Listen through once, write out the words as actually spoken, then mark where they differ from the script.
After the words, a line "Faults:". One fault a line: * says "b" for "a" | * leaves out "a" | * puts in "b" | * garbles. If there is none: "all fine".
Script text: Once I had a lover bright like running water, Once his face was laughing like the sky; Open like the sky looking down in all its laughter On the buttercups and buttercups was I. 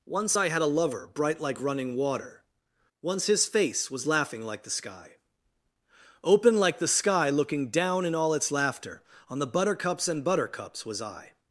Once I had a lover bright like running water, Once his face was laughing like the sky; Open like the sky looking down in all its laughter On the buttercups and buttercups was I.
Faults:
all fine